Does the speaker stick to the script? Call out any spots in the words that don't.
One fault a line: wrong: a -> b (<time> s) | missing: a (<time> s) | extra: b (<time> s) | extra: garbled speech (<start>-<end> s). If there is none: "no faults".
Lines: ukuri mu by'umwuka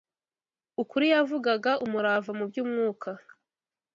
extra: yavugaga umurava (1.1 s)